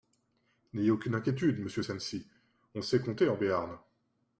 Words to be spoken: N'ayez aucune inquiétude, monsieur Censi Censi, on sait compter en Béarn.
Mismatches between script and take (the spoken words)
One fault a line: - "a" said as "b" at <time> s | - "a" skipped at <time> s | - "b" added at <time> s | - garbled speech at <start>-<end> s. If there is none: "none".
- "Censi" skipped at 2.3 s